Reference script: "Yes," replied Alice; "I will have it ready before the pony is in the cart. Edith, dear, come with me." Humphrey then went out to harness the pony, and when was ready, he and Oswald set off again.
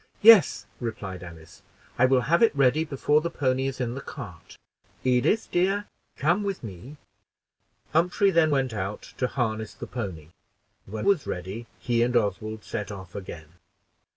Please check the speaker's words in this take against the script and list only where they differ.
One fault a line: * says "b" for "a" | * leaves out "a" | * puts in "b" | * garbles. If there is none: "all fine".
all fine